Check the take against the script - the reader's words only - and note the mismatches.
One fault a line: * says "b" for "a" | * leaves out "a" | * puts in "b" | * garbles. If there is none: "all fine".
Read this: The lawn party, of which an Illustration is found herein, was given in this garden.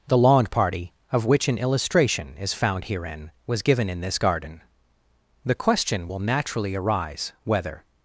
* puts in "The question will naturally arise whether"